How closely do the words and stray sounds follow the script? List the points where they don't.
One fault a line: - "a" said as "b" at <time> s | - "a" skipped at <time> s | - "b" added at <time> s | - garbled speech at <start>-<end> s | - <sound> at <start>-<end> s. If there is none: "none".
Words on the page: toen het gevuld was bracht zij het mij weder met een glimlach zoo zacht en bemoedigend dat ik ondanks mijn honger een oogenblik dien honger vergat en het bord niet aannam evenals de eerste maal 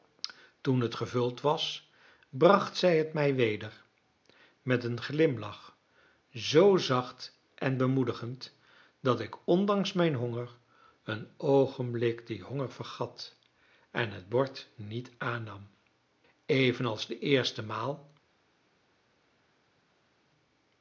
none